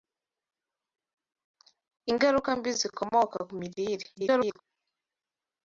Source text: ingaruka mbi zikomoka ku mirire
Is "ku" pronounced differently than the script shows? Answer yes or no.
no